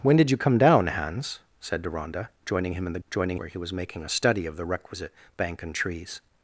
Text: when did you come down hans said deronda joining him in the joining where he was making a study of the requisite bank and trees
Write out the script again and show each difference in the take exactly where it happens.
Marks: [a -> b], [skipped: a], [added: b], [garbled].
when did you come down hans said deronda joining him in the joining where he was making a study of the requisite bank and trees